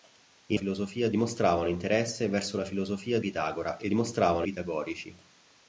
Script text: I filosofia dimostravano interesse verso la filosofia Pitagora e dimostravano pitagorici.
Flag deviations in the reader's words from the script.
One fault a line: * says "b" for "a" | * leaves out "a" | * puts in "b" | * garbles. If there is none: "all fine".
all fine